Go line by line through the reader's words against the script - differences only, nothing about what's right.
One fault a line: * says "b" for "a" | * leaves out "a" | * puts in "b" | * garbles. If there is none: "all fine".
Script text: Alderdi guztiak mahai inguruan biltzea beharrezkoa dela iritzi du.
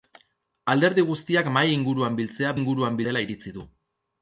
* says "inguruan" for "beharrezkoa"